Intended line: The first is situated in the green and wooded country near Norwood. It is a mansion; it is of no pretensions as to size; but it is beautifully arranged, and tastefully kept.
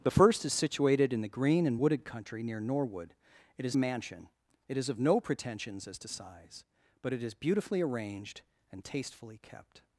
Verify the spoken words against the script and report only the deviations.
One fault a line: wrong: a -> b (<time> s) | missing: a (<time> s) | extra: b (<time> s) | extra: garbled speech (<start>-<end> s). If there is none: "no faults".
no faults